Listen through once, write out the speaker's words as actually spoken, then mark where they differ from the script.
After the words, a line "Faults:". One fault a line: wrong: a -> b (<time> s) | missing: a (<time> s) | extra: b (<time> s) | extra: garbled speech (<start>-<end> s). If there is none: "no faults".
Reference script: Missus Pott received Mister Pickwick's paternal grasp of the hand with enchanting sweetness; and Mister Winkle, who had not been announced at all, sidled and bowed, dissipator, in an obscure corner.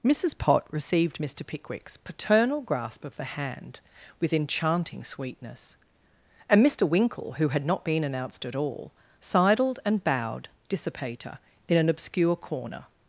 Missus Pott received Mister Pickwick's paternal grasp of the hand with enchanting sweetness; and Mister Winkle, who had not been announced at all, sidled and bowed, dissipator, in an obscure corner.
Faults:
no faults